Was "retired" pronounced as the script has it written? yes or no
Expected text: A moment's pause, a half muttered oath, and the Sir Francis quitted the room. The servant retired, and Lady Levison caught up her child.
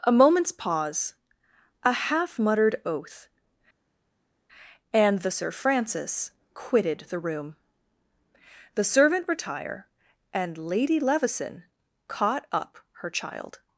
no